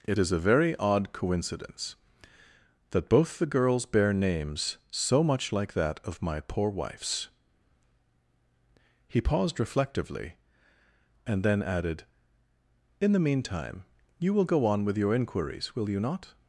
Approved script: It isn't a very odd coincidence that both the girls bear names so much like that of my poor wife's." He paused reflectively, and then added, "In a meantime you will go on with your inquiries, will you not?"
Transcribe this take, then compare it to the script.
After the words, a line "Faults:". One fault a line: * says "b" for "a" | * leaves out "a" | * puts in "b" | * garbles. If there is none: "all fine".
It is a very odd coincidence that both the girls bear names so much like that of my poor wife's." He paused reflectively, and then added, "In the meantime you will go on with your inquiries, will you not?"
Faults:
* says "is" for "isn't"
* says "the" for "a"